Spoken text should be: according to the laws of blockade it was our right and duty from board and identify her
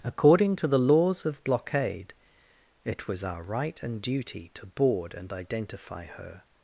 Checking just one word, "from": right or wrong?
wrong